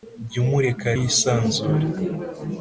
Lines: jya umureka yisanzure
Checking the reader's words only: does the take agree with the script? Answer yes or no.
yes